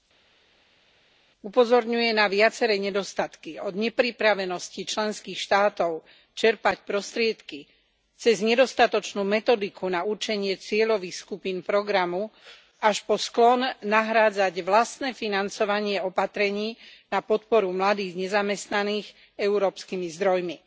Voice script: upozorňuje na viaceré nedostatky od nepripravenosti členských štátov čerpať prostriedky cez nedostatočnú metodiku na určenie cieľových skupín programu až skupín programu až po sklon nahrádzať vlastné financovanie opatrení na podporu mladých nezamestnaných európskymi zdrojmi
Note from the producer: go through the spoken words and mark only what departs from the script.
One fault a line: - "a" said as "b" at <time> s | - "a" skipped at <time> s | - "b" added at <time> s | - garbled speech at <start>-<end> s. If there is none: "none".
- "skupín programu až" skipped at 13.0 s